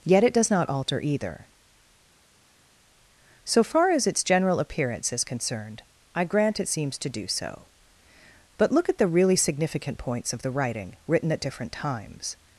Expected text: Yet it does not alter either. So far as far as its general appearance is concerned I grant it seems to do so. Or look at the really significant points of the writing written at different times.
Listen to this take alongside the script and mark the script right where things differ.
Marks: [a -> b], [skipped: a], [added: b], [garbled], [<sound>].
Yet it does not alter either. So far as [skipped: far as] its general appearance is concerned I grant it seems to do so. [Or -> But] look at the really significant points of the writing written at different times.